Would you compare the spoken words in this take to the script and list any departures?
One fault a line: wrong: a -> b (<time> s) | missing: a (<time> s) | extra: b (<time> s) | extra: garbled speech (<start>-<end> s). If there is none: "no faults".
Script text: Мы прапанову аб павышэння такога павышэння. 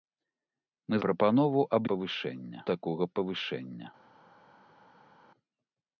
no faults